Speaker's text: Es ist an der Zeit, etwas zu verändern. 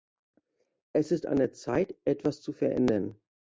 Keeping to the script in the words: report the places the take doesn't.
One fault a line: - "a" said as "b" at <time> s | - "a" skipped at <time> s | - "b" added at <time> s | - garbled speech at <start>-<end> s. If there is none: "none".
none